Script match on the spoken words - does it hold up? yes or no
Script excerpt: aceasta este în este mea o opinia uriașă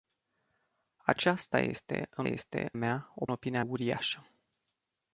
yes